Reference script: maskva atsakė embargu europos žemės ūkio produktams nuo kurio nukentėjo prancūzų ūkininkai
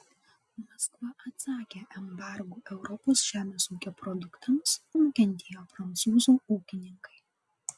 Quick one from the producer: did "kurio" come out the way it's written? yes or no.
no